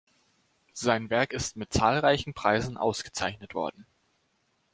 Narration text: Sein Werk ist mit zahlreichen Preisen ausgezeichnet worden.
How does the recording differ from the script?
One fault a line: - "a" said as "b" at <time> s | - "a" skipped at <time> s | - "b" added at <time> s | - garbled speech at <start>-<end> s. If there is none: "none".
none